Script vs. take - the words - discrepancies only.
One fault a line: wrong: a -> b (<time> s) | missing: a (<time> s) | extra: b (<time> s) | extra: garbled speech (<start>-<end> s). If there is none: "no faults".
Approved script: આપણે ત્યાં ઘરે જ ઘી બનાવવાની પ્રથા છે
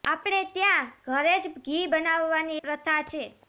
no faults